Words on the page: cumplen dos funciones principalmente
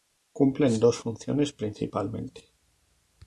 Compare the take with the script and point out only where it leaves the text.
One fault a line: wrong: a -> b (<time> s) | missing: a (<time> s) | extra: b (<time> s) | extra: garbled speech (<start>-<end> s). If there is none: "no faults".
no faults